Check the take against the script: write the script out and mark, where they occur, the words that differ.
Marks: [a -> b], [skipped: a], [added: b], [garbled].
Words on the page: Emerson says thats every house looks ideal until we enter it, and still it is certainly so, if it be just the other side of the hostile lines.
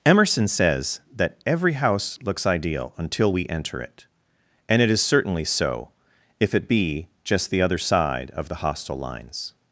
Emerson says [thats -> that] every house looks ideal until we enter it, and [skipped: still] it is certainly so, if it be just the other side of the hostile lines.